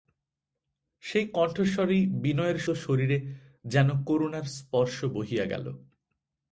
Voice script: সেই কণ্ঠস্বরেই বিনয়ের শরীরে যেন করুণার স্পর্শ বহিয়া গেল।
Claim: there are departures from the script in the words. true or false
false